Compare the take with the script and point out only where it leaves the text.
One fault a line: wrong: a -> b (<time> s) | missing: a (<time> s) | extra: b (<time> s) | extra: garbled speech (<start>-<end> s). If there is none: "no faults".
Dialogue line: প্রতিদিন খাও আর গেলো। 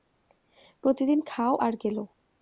no faults